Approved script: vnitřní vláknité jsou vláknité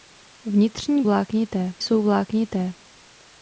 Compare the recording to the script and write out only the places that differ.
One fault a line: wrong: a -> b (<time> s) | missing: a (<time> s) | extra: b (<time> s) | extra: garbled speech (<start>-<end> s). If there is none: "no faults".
no faults